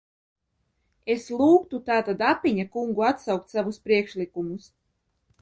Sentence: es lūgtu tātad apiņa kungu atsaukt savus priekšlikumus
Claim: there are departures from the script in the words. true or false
false